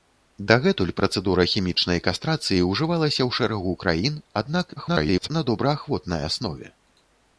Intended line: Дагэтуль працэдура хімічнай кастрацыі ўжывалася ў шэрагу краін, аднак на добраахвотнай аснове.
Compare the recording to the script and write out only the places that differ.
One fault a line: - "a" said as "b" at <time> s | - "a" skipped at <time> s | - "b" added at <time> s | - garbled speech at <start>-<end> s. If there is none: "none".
- garbled speech at 4.8-5.3 s